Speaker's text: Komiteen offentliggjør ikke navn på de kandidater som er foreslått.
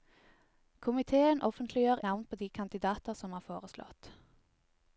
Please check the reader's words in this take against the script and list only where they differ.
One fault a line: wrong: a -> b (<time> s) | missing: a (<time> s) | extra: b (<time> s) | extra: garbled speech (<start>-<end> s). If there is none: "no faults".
missing: ikke (2.0 s)